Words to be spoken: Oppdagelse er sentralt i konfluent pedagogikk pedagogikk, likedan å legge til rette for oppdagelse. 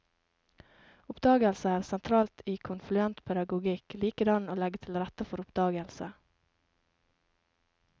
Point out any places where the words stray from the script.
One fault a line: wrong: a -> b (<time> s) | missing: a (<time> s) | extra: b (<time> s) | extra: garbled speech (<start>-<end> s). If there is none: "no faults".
missing: pedagogikk (4.0 s)